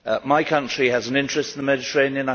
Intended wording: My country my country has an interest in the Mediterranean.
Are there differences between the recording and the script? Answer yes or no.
yes